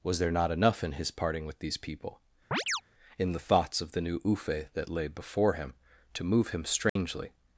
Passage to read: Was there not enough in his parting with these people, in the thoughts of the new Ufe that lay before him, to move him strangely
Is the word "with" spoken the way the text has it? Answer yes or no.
yes